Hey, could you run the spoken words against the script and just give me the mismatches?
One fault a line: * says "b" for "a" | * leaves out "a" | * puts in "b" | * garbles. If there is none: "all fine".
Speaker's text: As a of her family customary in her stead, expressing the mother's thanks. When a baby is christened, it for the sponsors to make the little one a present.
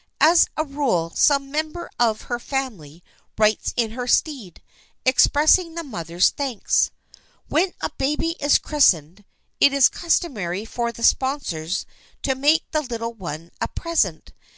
* puts in "rule some member"
* says "writes" for "customary"
* puts in "is customary"